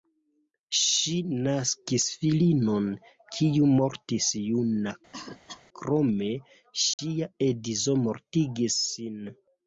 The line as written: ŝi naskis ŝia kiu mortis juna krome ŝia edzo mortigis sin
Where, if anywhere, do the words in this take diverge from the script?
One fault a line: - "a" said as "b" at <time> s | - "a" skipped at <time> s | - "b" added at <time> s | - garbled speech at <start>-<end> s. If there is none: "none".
- "ŝia" said as "filinon" at 2.2 s